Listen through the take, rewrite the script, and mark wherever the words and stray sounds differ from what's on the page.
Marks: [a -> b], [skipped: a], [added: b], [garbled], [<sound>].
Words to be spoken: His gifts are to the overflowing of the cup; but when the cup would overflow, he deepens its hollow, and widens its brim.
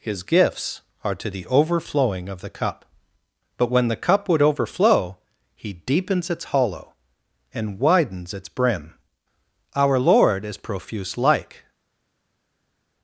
His gifts are to the overflowing of the cup; but when the cup would overflow, he deepens its hollow, and widens its brim. [added: Our Lord is profuse like]